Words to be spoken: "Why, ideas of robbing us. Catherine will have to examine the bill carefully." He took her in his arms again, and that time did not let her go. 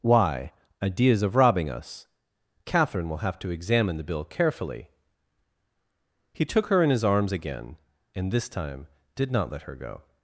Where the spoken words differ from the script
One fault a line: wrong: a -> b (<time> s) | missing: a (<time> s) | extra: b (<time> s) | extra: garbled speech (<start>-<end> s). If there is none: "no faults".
wrong: that -> this (8.3 s)